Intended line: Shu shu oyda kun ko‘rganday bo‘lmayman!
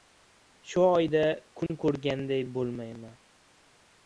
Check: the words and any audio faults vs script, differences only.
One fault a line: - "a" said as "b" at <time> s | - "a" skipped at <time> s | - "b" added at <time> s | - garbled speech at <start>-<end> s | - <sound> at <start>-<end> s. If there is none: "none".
- "shu" skipped at 0.8 s
- dropout at 1.7-1.7 s